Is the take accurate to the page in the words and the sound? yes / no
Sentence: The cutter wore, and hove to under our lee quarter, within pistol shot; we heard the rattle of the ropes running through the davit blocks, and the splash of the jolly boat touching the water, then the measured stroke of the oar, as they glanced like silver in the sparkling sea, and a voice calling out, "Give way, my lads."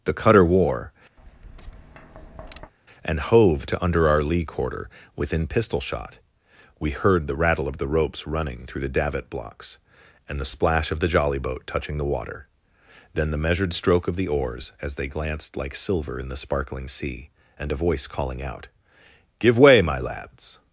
no